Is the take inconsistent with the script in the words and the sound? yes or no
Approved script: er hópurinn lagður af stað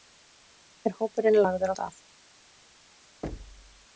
yes